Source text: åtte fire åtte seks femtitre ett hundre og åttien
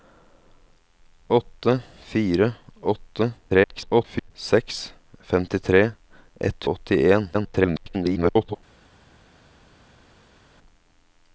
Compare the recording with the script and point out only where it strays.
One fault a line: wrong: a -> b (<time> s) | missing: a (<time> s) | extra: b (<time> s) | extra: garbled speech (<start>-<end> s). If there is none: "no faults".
extra: garbled speech (3.5-4.3 s)
missing: hundre (6.6 s)
extra: garbled speech (7.3-8.6 s)